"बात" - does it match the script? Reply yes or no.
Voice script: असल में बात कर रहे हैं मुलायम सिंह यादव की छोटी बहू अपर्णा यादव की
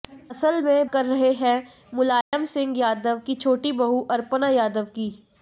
no